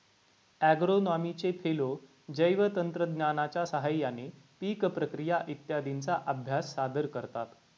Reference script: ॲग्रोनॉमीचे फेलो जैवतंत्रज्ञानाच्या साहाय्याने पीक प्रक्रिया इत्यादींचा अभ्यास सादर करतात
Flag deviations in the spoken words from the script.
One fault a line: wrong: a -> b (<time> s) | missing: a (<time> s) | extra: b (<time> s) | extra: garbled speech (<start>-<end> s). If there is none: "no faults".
no faults